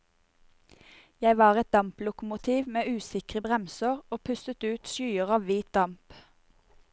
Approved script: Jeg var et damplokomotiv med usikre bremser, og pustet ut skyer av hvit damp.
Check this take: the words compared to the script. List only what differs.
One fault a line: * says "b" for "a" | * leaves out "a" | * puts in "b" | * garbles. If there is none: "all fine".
all fine